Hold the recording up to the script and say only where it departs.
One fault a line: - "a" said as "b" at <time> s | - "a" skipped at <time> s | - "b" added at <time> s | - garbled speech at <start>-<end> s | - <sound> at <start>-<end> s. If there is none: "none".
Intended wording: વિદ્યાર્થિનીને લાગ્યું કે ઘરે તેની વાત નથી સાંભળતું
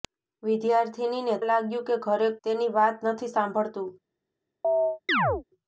- chirp at 4.6-5.4 s